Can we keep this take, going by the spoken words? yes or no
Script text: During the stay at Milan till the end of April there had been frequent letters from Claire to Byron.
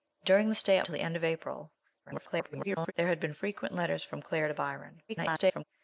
no